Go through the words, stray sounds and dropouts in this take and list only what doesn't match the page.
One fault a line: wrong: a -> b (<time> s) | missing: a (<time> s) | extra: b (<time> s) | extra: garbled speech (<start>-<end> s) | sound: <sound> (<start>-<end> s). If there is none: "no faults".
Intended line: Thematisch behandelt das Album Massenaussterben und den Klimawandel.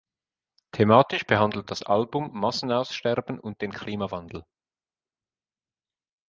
no faults